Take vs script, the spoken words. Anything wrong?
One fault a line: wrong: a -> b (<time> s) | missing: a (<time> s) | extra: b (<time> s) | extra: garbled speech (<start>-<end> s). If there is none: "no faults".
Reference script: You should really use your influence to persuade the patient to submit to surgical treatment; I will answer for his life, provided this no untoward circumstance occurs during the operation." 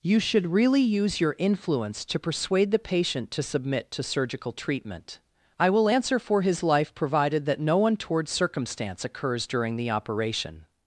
wrong: this -> that (7.5 s)